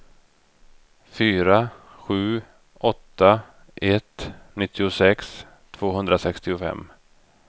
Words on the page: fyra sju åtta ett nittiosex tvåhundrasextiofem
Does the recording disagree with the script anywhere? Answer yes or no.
no